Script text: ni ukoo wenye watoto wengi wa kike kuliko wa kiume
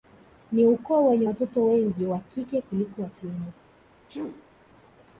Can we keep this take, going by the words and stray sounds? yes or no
no